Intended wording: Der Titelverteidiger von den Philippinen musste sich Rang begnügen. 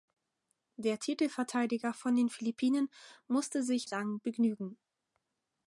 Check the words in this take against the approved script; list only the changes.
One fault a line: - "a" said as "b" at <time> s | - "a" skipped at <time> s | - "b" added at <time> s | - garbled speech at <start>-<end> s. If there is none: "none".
none